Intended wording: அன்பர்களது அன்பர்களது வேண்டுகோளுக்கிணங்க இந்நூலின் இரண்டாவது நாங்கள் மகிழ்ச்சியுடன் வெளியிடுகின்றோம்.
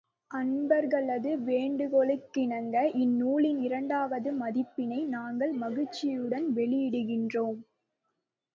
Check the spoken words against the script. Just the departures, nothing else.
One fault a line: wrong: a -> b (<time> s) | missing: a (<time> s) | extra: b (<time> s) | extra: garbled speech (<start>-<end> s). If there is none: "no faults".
missing: அன்பர்களது (1.3 s)
extra: பதிப்பினை (4.4 s)